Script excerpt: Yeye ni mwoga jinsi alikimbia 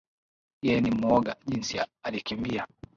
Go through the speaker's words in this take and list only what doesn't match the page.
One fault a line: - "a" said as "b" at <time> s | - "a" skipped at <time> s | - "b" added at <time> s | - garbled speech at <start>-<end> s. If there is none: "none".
none